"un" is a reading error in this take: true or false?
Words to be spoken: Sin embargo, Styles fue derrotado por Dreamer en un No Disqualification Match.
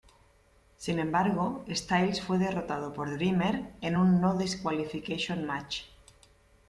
false